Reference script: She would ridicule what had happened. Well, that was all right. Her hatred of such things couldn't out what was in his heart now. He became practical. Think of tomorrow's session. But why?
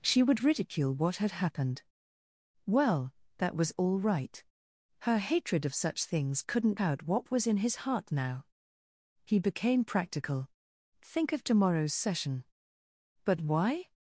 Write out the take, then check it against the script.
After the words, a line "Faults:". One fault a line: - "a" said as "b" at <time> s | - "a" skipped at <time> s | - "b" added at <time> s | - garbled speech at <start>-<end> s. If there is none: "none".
She would ridicule what had happened. Well, that was all right. Her hatred of such things couldn't out what was in his heart now. He became practical. Think of tomorrow's session. But why?
Faults:
none